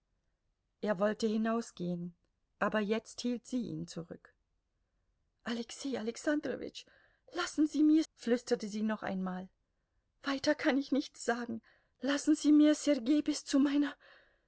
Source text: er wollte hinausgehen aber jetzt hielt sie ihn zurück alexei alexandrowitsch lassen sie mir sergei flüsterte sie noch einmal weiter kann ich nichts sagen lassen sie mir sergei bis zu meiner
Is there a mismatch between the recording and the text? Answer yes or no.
yes